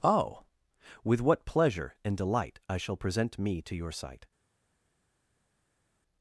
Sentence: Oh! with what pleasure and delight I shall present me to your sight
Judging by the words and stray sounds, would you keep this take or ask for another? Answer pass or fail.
pass